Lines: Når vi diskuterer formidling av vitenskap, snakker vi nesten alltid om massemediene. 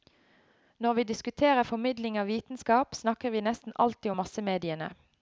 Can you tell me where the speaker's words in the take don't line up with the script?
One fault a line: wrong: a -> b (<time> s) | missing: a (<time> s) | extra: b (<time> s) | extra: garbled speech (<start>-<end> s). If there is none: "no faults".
no faults